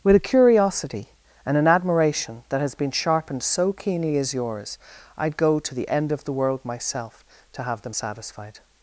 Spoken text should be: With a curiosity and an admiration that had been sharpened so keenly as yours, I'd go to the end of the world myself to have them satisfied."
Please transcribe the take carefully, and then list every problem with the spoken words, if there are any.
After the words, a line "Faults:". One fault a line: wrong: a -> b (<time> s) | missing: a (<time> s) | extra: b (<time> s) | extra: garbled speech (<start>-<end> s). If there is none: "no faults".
With a curiosity and an admiration that has been sharpened so keenly as yours, I'd go to the end of the world myself to have them satisfied."
Faults:
wrong: had -> has (2.6 s)